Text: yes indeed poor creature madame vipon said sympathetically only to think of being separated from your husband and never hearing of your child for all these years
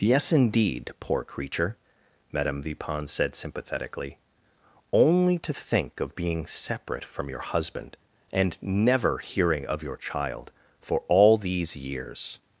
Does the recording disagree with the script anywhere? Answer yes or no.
yes